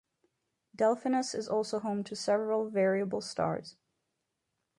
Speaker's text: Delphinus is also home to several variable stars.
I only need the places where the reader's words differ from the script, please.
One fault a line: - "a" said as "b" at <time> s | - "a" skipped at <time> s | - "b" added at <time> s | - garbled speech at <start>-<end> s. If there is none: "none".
none